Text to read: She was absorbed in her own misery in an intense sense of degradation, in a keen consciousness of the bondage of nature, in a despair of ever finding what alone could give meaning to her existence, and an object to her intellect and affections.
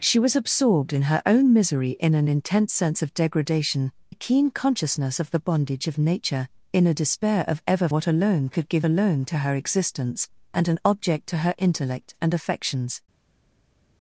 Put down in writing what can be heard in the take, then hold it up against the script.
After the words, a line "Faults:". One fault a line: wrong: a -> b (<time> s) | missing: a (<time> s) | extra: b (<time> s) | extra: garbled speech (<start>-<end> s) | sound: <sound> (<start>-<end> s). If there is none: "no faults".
She was absorbed in her own misery in an intense sense of degradation, a keen consciousness of the bondage of nature, in a despair of ever what alone could give alone to her existence, and an object to her intellect and affections.
Faults:
missing: in (3.9 s)
missing: finding (7.9 s)
wrong: meaning -> alone (8.8 s)